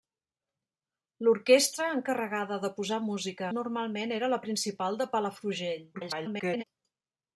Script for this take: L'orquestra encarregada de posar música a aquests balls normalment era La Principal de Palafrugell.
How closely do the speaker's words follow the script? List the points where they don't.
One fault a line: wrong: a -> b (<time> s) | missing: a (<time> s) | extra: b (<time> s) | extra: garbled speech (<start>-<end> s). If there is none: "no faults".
missing: a aquests balls (3.5 s)
extra: garbled speech (5.9-6.6 s)